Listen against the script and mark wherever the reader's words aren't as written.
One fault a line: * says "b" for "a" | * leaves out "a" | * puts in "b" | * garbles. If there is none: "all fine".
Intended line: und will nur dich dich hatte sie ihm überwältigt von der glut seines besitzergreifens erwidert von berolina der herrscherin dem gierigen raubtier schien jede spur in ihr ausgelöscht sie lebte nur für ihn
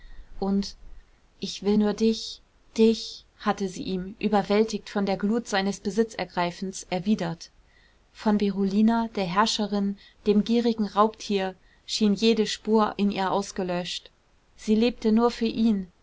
* puts in "ich"